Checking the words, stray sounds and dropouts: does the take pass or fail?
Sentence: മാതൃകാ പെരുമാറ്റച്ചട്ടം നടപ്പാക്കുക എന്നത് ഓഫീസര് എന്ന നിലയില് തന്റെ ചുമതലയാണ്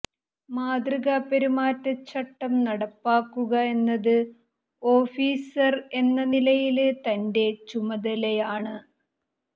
pass